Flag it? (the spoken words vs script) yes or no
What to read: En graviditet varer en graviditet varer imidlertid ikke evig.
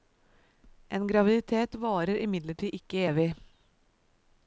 yes